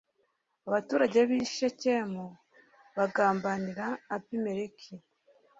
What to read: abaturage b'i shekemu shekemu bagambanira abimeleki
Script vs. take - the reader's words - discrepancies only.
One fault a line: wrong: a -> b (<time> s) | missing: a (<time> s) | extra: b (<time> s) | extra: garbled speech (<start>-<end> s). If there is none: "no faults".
missing: shekemu (2.2 s)